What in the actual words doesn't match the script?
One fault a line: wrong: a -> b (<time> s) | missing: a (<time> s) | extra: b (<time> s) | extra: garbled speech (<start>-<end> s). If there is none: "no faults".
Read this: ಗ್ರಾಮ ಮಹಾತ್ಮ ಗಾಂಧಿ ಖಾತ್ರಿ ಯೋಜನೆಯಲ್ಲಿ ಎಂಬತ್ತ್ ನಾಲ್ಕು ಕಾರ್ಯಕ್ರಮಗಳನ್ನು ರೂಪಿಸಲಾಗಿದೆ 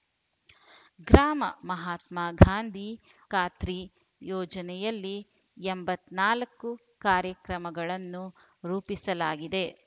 no faults